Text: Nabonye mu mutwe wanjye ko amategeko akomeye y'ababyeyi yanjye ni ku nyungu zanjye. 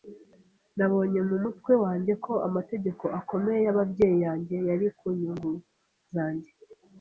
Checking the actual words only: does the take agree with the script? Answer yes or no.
no